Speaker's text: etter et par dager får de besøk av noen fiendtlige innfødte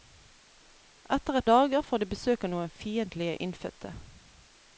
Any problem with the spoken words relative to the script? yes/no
yes